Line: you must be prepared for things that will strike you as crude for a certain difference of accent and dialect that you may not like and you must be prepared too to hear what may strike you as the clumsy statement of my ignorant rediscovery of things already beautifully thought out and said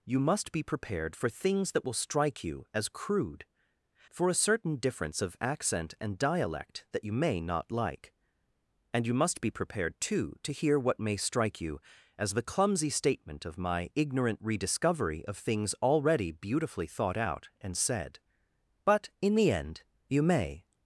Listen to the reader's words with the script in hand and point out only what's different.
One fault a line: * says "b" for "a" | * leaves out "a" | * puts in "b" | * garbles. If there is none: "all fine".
* puts in "but in the end you may"